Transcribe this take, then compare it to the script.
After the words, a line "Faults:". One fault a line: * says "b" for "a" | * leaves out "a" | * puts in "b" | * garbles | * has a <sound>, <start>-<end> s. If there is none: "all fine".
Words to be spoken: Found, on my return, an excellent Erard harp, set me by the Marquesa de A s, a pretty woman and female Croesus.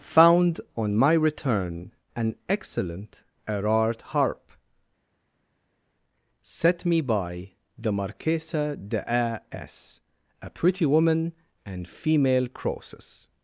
Found, on my return, an excellent Erard harp, set me by the Marquesa de A s, a pretty woman and female Croesus.
Faults:
all fine